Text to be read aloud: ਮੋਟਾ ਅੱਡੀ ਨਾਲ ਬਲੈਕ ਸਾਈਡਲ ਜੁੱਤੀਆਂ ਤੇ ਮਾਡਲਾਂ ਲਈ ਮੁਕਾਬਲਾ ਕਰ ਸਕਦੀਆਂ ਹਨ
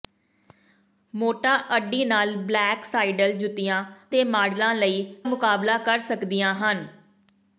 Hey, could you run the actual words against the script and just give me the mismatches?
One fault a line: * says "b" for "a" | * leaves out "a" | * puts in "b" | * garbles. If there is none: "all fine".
all fine